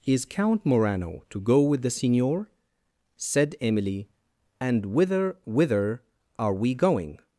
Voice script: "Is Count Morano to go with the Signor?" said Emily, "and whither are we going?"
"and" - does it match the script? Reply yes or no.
yes